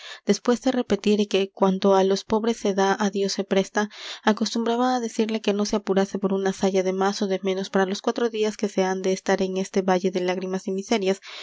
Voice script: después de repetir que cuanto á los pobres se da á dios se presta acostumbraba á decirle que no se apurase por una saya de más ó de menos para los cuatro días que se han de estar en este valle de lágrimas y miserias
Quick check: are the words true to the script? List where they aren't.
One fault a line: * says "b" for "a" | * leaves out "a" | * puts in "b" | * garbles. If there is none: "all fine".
all fine